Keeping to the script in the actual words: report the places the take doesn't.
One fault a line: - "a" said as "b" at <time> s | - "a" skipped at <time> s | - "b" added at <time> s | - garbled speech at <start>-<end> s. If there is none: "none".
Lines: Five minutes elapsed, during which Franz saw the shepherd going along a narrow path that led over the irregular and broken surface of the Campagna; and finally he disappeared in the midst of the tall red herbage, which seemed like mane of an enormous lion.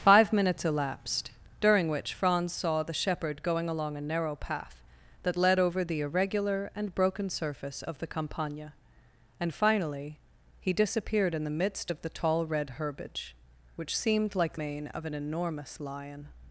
none